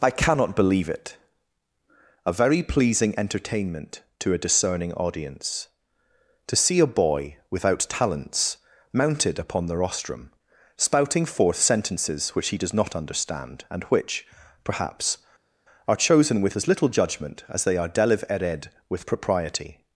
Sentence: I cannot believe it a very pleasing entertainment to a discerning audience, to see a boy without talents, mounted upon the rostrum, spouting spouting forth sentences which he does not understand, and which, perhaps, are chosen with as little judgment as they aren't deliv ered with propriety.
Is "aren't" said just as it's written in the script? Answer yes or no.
no